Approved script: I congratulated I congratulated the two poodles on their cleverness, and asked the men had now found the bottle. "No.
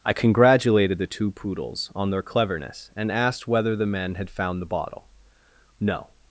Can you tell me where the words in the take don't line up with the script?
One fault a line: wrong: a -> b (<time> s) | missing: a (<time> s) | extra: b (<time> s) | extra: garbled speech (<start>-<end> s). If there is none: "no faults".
missing: I congratulated (1.0 s)
extra: whether (3.5 s)
missing: now (4.3 s)